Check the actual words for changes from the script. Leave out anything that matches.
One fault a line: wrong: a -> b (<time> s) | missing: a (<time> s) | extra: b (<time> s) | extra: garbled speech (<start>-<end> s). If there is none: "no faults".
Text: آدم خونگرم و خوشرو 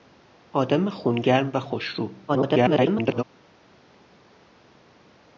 extra: garbled speech (2.3-3.2 s)